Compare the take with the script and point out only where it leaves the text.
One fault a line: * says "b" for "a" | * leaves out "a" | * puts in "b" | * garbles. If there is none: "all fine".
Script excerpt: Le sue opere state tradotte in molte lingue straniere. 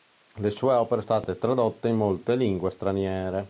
all fine